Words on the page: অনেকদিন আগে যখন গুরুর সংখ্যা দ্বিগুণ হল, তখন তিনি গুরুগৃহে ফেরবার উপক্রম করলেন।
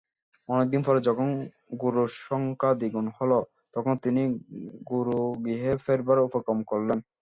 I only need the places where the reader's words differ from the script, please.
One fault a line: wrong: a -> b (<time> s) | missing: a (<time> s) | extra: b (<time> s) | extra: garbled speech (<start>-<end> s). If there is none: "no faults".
wrong: আগে -> পরে (0.9 s)